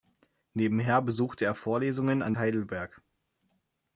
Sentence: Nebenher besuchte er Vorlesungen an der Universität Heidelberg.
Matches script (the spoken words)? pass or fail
fail